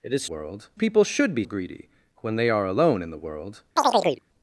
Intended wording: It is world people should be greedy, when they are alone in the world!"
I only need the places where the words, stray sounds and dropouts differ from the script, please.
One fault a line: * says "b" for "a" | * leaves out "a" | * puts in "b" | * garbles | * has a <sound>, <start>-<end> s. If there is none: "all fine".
* has a chirp, 3.8-4.2 s